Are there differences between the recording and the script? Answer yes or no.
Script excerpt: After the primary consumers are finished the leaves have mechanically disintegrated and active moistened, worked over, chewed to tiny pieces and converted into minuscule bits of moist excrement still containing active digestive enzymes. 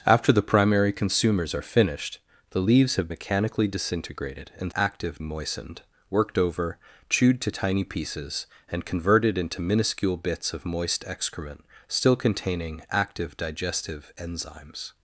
no